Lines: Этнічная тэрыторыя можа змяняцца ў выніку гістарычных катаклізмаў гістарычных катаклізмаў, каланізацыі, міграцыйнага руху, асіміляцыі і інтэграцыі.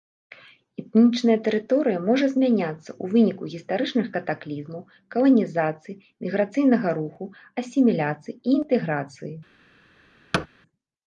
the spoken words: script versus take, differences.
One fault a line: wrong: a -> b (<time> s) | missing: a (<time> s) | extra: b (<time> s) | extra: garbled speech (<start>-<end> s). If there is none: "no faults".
missing: гістарычных катаклізмаў (4.8 s)